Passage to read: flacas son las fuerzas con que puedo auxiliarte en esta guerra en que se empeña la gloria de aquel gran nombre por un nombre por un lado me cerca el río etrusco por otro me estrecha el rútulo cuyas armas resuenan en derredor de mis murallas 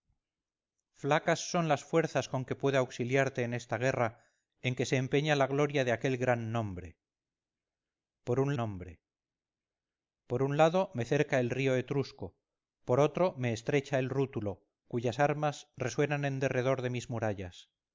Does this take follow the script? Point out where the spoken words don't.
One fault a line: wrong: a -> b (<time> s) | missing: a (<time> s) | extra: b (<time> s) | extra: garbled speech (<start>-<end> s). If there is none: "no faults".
no faults